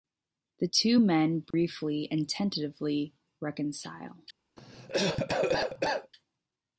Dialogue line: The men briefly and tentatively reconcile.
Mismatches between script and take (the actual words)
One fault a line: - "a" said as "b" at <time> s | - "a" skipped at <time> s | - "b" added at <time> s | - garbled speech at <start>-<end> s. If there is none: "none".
- "two" added at 0.6 s